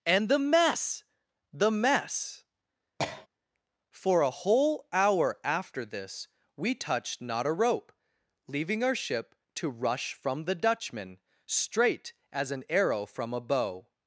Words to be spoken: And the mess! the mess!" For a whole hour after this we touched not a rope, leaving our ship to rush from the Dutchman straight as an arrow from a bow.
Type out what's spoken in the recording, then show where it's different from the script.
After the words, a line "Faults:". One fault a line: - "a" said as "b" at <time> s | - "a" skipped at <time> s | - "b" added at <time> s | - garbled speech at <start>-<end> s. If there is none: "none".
And the mess! the mess!" For a whole hour after this we touched not a rope, leaving our ship to rush from the Dutchman straight as an arrow from a bow.
Faults:
none